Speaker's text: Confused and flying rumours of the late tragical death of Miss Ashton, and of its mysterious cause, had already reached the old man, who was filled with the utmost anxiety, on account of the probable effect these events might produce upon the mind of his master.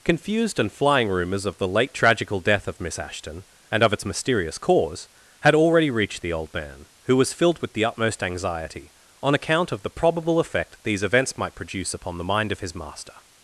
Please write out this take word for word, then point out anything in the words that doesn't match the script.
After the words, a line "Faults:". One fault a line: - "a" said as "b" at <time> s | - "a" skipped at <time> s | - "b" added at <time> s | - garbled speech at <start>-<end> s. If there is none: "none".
Confused and flying rumours of the late tragical death of Miss Ashton, and of its mysterious cause, had already reached the old man, who was filled with the utmost anxiety, on account of the probable effect these events might produce upon the mind of his master.
Faults:
none